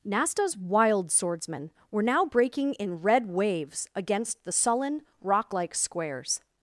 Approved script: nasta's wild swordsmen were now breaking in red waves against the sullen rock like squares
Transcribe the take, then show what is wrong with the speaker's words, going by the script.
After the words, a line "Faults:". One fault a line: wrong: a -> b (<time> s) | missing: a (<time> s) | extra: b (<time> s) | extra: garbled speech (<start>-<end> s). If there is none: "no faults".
nasta's wild swordsmen were now breaking in red waves against the sullen rock like squares
Faults:
no faults